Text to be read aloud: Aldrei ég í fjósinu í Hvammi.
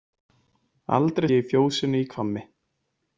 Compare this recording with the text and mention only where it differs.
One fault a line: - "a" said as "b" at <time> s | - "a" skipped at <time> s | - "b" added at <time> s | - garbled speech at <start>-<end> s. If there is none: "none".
none